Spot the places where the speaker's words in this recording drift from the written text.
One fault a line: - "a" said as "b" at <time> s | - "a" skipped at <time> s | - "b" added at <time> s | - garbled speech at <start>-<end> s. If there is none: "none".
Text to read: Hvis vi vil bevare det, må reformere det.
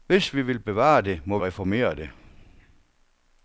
none